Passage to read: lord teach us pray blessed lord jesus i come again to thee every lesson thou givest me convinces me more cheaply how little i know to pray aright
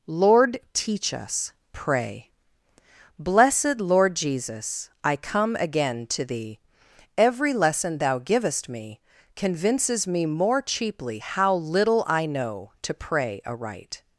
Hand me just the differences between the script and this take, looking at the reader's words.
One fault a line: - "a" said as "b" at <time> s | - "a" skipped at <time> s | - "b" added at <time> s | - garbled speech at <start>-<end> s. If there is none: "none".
none